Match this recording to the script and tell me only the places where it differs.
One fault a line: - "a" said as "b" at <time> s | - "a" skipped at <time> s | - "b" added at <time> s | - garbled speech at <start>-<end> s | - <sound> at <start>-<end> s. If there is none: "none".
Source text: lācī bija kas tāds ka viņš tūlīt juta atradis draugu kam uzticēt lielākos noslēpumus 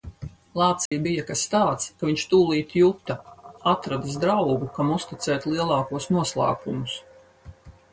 - dropout at 0.9-0.9 s